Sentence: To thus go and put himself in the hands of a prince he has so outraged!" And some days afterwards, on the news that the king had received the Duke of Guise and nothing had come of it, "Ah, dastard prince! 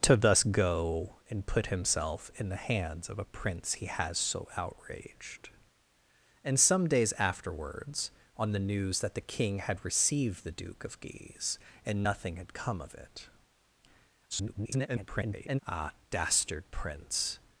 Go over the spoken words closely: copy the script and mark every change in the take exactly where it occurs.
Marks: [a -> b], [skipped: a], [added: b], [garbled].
To thus go and put himself in the hands of a prince he has so outraged!" And some days afterwards, on the news that the king had received the Duke of Guise and nothing had come of it, [garbled] "Ah, dastard prince!